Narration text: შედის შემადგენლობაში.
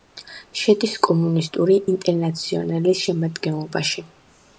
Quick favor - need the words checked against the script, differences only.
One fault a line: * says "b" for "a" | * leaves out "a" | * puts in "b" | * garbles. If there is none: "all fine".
* puts in "კომუნისტური ინტერნაციონალის"